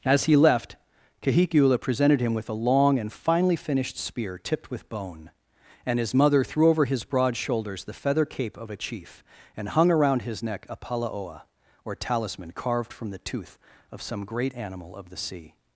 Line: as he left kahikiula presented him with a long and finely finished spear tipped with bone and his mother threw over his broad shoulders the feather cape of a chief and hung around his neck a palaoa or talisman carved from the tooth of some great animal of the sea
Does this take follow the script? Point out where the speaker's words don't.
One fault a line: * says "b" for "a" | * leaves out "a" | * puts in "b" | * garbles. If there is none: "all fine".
all fine